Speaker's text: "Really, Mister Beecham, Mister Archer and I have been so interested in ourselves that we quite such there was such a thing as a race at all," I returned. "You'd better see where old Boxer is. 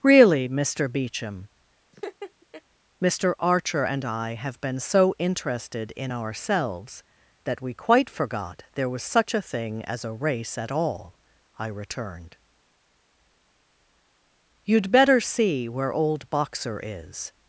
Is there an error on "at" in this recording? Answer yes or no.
no